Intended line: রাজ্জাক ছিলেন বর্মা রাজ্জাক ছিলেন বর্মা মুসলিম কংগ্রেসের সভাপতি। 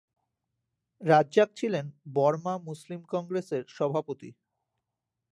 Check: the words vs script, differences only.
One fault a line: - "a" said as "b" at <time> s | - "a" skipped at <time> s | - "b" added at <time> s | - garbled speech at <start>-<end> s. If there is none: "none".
- "রাজ্জাক ছিলেন বর্মা" skipped at 2.5 s